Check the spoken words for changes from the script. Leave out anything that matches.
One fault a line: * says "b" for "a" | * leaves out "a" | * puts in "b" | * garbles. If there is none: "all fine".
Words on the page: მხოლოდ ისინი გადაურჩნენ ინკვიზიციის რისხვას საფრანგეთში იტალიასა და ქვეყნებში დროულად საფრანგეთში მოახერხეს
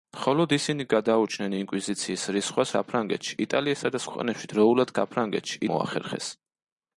all fine